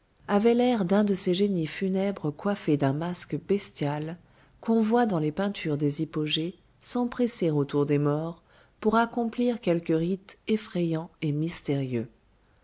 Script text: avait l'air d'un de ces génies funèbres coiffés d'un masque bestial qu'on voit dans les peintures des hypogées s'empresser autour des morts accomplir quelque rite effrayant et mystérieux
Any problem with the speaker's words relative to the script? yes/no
yes